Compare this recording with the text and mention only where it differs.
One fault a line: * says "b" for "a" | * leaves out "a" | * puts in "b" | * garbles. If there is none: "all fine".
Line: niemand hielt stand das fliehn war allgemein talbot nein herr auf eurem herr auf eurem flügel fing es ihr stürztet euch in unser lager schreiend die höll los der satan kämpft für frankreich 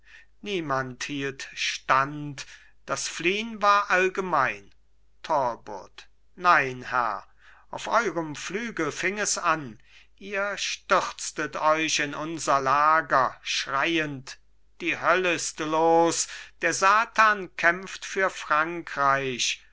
* leaves out "herr auf eurem"
* puts in "an"
* puts in "ist"